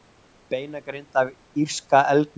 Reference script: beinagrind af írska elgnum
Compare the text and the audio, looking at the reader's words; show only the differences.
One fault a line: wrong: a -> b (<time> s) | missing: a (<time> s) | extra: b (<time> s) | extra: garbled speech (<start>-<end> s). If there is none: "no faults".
no faults